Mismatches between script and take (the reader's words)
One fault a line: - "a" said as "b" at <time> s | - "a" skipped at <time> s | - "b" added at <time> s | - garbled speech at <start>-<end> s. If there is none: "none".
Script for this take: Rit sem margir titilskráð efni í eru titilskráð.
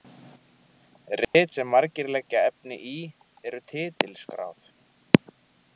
- "titilskráð" said as "leggja" at 2.2 s